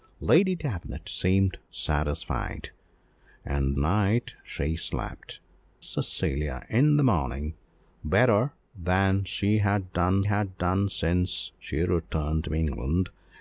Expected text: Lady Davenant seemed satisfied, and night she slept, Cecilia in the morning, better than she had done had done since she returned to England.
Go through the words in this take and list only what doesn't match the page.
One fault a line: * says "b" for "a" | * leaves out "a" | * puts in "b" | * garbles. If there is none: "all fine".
all fine